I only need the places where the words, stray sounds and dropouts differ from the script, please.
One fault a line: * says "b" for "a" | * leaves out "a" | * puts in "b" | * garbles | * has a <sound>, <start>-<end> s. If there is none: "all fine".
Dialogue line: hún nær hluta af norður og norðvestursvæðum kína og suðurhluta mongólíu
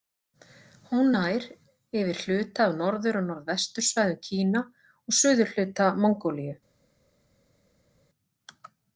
* puts in "yfir"